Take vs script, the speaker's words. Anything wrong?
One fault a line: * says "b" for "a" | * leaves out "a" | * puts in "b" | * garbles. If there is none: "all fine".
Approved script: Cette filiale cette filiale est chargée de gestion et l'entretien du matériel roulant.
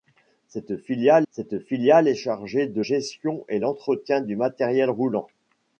all fine